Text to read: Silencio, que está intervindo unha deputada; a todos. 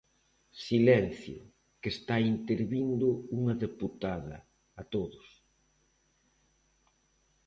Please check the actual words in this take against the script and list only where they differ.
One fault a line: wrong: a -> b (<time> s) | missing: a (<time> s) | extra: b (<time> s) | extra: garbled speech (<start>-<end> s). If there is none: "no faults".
no faults